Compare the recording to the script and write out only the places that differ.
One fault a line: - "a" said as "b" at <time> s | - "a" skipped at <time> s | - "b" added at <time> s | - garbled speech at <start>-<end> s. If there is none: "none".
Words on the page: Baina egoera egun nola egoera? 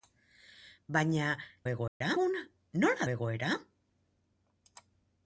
none